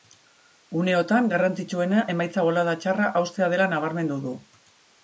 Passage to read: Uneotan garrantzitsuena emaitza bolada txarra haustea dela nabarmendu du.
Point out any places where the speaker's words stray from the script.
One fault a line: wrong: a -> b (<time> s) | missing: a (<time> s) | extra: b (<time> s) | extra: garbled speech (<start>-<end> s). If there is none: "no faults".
no faults